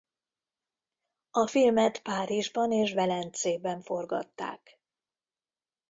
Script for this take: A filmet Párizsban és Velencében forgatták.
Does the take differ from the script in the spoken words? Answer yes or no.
no